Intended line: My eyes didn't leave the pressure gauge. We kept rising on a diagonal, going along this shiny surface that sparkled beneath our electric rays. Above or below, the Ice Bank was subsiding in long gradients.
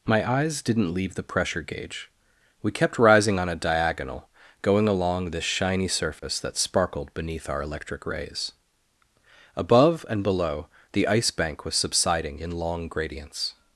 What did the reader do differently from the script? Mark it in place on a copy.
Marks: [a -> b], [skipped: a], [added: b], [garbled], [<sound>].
My eyes didn't leave the pressure gauge. We kept rising on a diagonal, going along this shiny surface [dropout] that sparkled beneath our electric rays. Above [or -> and] below, the Ice Bank was subsiding in long gradients.